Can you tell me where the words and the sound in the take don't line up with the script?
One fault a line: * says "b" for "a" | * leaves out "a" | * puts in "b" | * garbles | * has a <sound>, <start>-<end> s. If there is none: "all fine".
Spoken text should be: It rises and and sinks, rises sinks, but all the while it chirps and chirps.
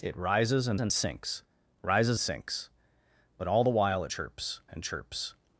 all fine